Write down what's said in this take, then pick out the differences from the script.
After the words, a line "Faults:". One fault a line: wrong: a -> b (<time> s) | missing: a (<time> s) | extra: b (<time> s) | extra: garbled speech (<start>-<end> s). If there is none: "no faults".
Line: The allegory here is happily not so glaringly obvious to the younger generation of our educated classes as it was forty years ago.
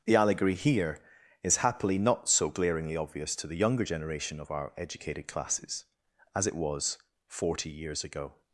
The allegory here is happily not so glaringly obvious to the younger generation of our educated classes as it was forty years ago.
Faults:
no faults